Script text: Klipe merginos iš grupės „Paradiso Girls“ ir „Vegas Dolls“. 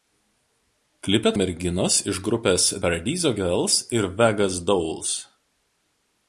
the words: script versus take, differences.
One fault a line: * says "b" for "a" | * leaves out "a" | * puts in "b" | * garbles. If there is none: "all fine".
all fine